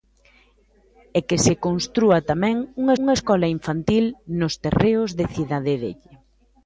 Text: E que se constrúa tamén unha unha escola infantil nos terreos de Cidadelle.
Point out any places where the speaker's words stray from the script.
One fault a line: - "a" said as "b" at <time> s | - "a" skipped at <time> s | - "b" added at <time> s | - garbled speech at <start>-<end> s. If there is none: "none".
none